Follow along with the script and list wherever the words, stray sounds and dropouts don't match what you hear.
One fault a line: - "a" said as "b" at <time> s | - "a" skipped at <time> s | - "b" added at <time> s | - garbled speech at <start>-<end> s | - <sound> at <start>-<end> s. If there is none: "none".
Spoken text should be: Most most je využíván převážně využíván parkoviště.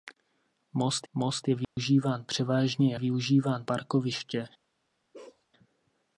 - dropout at 1.6-1.8 s
- bark at 5.1-5.5 s